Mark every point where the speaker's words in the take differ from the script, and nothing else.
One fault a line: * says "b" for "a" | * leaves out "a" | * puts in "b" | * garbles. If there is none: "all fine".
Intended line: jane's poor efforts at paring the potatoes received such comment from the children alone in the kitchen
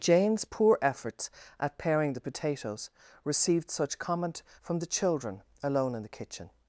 all fine